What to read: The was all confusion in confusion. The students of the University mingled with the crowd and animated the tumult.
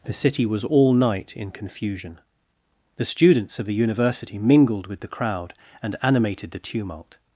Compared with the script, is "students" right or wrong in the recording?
right